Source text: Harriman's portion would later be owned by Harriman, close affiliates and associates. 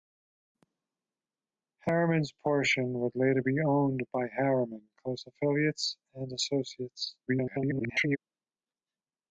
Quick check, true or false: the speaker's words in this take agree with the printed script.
false